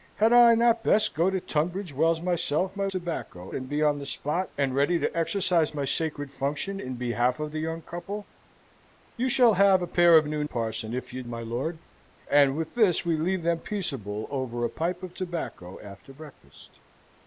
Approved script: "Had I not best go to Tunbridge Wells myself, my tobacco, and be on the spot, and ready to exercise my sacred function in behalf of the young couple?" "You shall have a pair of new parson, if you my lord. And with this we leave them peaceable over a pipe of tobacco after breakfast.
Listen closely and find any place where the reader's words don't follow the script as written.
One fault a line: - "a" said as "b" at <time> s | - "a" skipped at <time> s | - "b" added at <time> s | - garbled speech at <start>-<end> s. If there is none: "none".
none